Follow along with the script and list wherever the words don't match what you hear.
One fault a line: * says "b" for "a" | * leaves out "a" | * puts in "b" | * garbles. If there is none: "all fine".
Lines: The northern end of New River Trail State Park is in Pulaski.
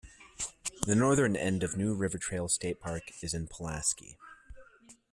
all fine